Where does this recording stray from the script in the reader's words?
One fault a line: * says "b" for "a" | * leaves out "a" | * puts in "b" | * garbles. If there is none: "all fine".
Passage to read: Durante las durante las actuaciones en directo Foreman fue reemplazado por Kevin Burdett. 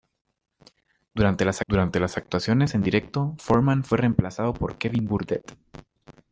all fine